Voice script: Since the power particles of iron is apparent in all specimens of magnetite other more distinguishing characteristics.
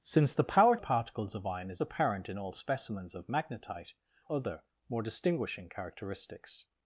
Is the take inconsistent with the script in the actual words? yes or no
no